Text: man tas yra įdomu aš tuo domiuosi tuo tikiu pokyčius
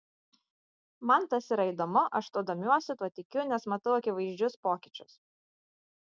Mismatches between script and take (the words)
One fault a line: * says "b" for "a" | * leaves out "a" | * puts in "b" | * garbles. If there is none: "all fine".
* puts in "nes matau akivaizdžius"